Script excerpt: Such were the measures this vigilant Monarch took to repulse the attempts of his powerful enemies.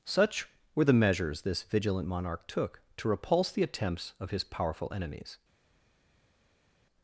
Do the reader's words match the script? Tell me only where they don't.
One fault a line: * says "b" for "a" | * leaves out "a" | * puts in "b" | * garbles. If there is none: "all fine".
all fine